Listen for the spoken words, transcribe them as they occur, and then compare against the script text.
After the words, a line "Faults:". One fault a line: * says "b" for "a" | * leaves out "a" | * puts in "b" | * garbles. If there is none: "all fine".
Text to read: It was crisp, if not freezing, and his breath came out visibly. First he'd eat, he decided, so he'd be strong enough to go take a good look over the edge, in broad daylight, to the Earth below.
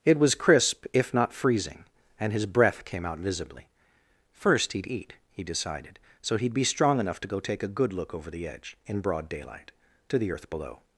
It was crisp, if not freezing, and his breath came out visibly. First he'd eat, he decided, so he'd be strong enough to go take a good look over the edge, in broad daylight, to the Earth below.
Faults:
all fine